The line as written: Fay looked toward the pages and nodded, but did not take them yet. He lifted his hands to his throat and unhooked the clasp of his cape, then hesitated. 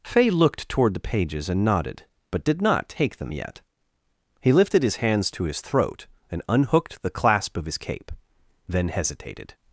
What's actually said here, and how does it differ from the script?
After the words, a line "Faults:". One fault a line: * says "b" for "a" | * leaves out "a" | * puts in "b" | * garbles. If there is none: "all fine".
Fay looked toward the pages and nodded, but did not take them yet. He lifted his hands to his throat and unhooked the clasp of his cape, then hesitated.
Faults:
all fine